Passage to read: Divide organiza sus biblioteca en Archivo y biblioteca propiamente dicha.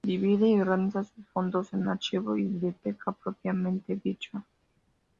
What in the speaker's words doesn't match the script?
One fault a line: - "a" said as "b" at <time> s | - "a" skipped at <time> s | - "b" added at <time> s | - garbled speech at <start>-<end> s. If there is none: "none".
- "y" added at 0.5 s
- "biblioteca" said as "fondos" at 1.3 s